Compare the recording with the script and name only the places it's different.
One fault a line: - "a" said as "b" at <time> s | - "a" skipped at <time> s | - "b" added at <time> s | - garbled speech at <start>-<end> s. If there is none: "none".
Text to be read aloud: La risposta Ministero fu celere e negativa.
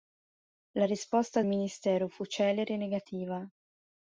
none